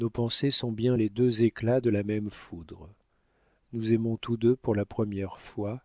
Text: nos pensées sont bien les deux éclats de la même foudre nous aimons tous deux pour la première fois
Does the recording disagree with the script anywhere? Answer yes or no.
no